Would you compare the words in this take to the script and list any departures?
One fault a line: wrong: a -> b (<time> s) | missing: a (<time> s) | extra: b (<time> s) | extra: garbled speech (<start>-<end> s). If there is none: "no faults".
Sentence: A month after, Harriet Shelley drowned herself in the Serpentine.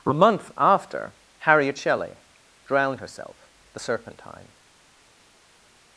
missing: in (3.5 s)